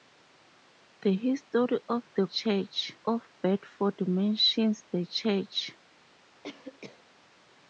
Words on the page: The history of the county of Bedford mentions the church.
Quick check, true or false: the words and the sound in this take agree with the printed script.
false